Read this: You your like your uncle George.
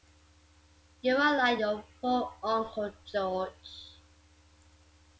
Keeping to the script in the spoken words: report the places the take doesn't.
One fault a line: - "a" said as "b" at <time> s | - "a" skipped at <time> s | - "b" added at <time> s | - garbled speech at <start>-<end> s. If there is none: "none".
- "your" said as "are" at 1.1 s
- "poor" added at 2.0 s